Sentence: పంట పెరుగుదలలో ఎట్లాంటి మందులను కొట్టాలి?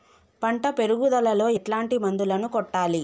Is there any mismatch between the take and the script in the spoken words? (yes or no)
no